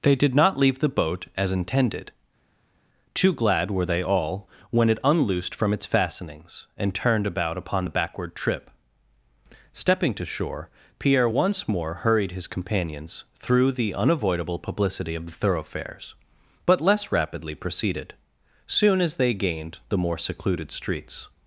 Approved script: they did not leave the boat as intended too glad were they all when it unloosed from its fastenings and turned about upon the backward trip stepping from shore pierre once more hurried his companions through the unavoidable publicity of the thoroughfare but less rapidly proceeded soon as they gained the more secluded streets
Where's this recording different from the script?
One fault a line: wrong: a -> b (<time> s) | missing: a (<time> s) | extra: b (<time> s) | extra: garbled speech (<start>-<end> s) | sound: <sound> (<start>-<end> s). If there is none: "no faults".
wrong: from -> to (10.1 s)
wrong: thoroughfare -> thoroughfares (15.3 s)